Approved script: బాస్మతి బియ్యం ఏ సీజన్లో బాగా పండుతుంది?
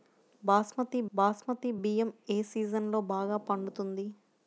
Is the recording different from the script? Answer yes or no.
yes